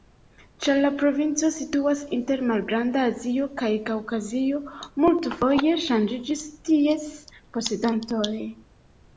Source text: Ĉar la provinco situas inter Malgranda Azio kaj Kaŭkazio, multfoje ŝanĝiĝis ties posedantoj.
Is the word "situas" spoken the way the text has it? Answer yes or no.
yes